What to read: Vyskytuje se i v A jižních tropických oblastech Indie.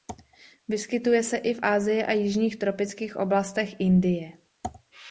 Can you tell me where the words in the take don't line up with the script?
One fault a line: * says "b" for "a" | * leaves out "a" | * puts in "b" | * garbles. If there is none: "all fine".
* puts in "Asii"